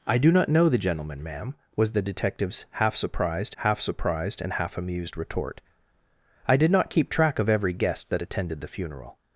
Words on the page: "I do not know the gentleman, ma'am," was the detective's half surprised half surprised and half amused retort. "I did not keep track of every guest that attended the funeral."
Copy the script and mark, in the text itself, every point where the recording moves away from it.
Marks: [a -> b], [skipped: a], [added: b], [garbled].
"I do not know the gentleman, ma'am," was the detective's half surprised half surprised and half amused retort. "I did not keep track of every guest that attended the funeral."